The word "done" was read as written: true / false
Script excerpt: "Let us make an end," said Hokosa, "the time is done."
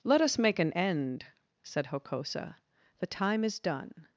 true